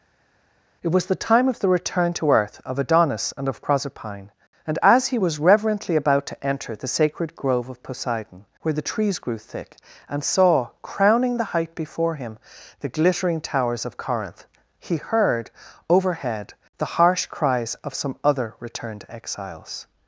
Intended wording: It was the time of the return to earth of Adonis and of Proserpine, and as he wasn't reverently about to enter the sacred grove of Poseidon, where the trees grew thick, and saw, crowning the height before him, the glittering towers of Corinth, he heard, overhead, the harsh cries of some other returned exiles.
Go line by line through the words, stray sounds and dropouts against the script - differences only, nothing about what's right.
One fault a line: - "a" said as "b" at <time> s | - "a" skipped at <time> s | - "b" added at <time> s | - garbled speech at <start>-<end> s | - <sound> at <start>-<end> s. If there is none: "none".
- "wasn't" said as "was" at 5.2 s